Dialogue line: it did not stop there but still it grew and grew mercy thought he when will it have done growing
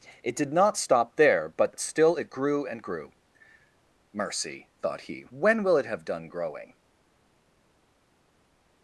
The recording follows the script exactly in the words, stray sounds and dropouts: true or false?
true